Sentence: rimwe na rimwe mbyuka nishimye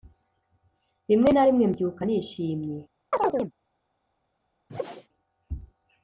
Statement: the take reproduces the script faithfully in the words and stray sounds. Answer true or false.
false